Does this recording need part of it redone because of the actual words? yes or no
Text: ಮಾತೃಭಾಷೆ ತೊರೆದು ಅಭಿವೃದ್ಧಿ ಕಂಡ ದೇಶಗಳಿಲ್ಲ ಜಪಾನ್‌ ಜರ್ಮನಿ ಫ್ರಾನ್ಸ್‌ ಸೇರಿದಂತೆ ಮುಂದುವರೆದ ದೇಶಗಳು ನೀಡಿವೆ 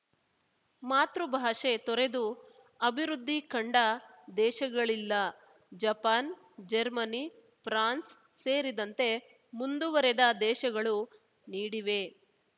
no